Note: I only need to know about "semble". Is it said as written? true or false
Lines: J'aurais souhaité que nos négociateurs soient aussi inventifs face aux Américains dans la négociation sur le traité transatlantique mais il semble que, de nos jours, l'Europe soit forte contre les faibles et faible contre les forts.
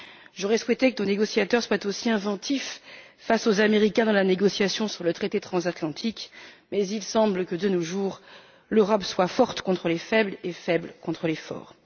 true